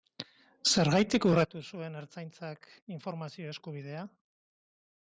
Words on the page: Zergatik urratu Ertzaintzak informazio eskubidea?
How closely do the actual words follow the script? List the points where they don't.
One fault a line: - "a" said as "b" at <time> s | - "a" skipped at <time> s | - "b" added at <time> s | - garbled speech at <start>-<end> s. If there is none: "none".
- "zuen" added at 1.7 s